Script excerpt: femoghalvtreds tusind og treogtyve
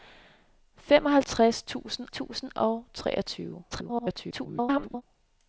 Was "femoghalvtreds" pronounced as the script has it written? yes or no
yes